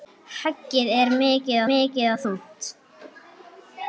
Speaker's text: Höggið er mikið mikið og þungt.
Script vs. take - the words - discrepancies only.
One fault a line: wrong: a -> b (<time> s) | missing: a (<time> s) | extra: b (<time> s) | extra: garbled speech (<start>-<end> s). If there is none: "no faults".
no faults